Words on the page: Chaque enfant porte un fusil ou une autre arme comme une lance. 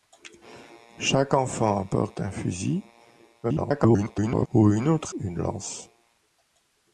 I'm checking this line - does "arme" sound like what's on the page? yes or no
no